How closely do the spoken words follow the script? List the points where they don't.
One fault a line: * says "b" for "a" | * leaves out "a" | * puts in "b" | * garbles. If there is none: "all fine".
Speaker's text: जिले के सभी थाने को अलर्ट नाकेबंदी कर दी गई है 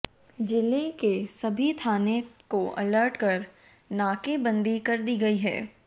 * puts in "कर"